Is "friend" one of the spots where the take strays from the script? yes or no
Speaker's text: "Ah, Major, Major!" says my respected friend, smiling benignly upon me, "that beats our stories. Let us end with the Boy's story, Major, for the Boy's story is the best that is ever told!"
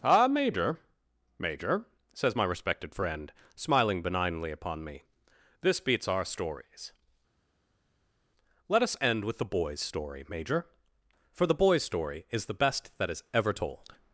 no